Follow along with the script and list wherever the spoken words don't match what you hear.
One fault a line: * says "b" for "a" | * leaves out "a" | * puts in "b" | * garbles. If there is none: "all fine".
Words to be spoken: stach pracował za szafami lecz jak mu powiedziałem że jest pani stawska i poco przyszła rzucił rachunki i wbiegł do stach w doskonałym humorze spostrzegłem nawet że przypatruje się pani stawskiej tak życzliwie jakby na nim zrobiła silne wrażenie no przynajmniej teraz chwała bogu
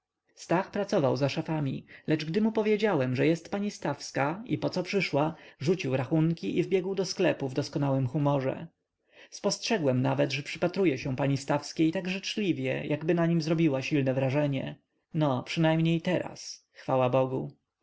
* says "gdy" for "jak"
* says "sklepu" for "stach"